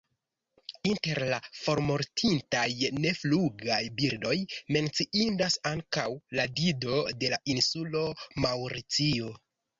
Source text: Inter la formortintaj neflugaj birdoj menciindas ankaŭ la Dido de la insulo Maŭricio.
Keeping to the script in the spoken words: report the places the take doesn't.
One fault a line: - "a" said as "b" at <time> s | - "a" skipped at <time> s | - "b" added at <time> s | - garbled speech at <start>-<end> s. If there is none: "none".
none